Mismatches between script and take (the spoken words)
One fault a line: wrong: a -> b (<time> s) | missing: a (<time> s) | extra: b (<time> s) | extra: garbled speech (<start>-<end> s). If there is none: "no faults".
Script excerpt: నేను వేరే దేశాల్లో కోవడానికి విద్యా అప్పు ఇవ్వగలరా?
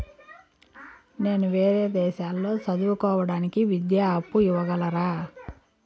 extra: చదువు (2.6 s)